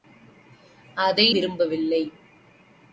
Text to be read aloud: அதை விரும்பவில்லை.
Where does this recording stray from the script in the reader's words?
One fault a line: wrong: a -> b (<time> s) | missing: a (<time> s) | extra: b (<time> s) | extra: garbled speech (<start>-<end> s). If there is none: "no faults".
no faults